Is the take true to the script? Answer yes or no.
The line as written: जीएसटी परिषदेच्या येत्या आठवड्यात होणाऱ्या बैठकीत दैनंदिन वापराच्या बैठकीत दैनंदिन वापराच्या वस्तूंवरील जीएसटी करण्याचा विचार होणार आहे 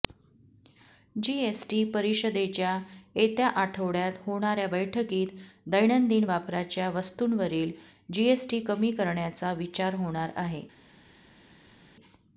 no